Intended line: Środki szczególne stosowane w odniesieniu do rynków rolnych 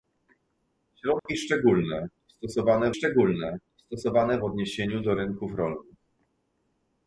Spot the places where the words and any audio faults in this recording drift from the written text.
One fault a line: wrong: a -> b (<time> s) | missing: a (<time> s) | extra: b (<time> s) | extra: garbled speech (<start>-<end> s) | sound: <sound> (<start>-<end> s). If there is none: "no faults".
sound: dropout (1.2-1.3 s)
extra: szczególne stosowane (2.9 s)